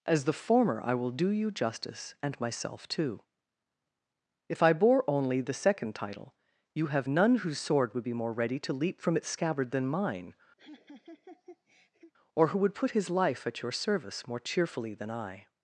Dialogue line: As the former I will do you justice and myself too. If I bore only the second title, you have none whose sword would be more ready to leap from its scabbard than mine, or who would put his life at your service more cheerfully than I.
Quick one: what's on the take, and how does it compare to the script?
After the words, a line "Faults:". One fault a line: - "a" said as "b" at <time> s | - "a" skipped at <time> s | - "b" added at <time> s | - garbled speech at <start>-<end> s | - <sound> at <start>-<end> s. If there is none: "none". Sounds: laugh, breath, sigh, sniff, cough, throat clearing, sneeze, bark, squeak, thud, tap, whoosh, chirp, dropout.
As the former I will do you justice and myself too. If I bore only the second title, you have none whose sword would be more ready to leap from its scabbard than mine, or who would put his life at your service more cheerfully than I.
Faults:
- laugh at 10.6-12.1 s